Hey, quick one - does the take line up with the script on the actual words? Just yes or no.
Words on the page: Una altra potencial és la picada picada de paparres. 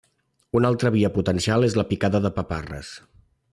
no